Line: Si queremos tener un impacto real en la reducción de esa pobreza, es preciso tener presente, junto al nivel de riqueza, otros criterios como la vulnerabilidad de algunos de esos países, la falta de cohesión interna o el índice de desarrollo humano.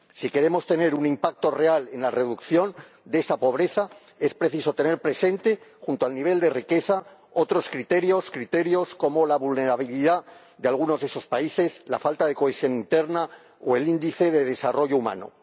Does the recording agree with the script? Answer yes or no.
no